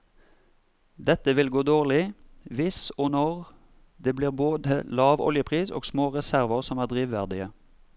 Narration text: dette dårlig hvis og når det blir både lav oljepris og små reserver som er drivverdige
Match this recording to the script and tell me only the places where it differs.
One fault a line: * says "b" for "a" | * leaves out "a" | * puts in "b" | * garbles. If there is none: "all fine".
* puts in "vil gå"